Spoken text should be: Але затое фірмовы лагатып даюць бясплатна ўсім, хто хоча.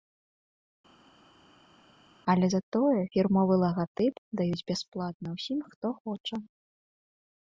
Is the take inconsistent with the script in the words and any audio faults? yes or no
no